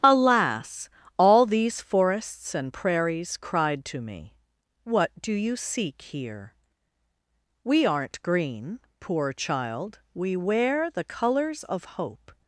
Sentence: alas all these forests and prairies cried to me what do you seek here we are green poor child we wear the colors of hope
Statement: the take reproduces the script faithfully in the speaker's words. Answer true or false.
false